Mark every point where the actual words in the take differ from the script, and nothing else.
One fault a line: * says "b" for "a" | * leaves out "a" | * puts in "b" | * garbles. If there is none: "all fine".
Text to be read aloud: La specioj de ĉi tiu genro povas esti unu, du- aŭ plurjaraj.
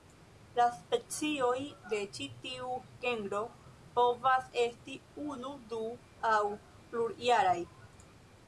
all fine